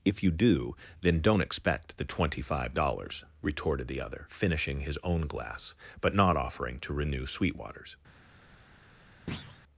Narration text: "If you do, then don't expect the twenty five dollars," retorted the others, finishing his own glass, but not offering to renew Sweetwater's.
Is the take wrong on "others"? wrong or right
wrong